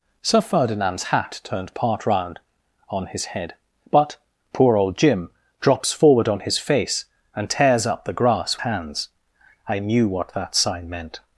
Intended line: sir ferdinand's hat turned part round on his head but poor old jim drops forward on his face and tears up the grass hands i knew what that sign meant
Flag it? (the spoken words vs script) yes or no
no